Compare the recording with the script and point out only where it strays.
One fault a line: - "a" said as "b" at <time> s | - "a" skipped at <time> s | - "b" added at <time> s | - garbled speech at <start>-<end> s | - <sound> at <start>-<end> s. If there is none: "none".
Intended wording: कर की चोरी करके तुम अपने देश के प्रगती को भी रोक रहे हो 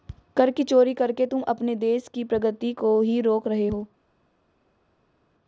- "के" said as "की" at 2.1 s
- "भी" said as "ही" at 3.0 s